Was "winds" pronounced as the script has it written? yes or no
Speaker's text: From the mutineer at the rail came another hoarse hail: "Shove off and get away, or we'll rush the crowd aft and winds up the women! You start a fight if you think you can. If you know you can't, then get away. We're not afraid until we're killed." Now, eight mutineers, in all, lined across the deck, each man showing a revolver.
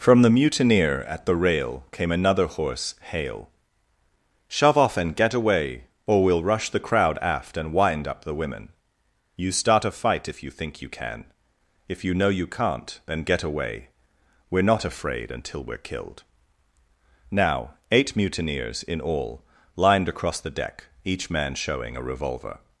no